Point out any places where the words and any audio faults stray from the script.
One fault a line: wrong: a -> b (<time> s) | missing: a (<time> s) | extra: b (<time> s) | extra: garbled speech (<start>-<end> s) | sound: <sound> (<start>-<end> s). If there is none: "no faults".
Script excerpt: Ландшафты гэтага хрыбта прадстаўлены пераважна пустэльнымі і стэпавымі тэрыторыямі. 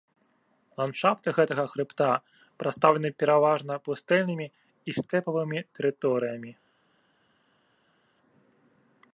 no faults